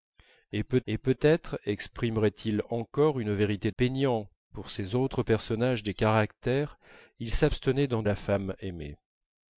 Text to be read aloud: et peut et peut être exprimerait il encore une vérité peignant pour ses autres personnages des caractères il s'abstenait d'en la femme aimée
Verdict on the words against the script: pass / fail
pass